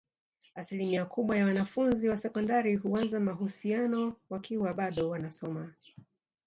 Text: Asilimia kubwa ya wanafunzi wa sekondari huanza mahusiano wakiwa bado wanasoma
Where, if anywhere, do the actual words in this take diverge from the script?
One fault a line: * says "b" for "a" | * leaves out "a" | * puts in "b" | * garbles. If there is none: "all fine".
all fine